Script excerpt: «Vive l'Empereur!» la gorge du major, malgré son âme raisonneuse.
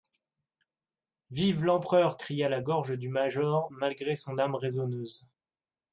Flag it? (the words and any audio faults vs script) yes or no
yes